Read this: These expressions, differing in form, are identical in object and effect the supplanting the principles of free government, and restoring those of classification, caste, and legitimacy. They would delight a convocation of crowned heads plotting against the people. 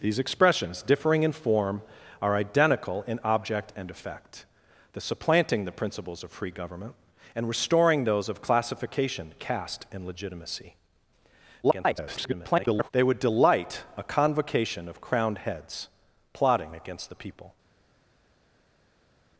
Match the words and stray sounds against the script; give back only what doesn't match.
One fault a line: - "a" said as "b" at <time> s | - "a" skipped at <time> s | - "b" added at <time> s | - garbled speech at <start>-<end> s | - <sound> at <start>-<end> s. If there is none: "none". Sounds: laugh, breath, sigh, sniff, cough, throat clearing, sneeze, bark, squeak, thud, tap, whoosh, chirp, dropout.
- garbled speech at 11.6-12.9 s